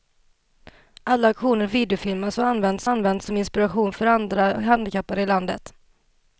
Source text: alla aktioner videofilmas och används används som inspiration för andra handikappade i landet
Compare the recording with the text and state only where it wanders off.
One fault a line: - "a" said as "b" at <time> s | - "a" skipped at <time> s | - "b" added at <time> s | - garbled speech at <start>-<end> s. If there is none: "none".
none